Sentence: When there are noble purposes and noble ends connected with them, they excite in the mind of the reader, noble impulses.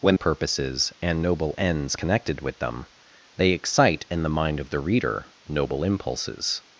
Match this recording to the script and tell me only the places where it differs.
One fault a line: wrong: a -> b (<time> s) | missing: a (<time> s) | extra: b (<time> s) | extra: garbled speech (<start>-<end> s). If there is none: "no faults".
missing: there are noble (0.1 s)